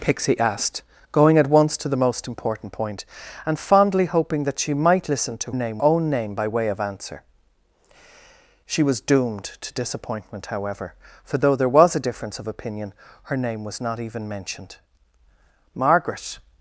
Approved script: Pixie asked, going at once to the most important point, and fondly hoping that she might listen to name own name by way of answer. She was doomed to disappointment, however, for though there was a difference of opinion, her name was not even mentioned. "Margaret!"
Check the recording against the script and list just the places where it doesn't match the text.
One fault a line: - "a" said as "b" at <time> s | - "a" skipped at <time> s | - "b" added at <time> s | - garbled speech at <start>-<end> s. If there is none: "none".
none